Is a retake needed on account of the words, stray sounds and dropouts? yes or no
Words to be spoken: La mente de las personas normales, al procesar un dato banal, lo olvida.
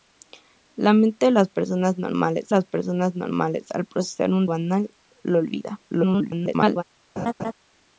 yes